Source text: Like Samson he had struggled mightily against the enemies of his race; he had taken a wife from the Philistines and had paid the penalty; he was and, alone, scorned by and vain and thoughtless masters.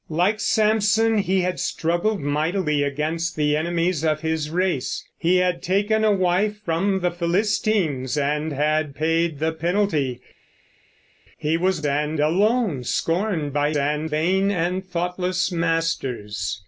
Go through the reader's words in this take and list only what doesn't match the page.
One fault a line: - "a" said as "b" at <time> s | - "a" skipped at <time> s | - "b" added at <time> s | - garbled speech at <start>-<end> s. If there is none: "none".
none